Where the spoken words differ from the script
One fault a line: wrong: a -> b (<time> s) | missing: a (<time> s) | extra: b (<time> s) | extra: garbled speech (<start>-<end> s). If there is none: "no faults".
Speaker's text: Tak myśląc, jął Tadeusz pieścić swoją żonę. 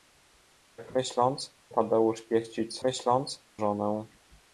missing: jął (1.6 s)
wrong: swoją -> myśląc (2.8 s)